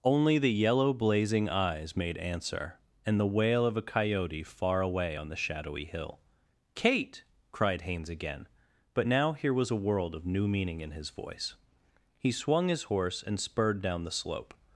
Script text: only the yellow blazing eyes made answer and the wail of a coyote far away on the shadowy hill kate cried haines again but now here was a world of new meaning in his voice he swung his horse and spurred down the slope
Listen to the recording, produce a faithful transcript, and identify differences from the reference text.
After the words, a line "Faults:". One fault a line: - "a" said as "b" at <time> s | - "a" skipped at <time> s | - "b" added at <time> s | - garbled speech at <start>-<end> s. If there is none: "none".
only the yellow blazing eyes made answer and the wail of a coyote far away on the shadowy hill kate cried haines again but now here was a world of new meaning in his voice he swung his horse and spurred down the slope
Faults:
none